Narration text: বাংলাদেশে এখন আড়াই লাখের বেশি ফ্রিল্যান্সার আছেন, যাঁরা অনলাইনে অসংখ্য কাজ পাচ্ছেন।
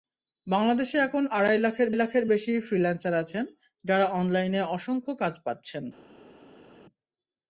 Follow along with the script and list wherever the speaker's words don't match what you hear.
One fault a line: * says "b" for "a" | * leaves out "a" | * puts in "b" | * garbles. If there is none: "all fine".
* puts in "লাখের"